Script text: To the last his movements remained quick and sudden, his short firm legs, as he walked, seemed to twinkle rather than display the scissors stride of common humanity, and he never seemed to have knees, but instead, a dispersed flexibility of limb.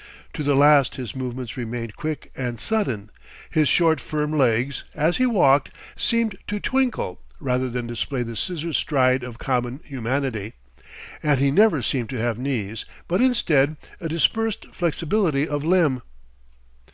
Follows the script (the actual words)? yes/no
yes